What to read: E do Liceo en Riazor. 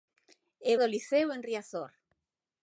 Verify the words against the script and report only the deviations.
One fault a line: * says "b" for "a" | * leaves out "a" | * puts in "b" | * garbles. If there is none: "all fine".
all fine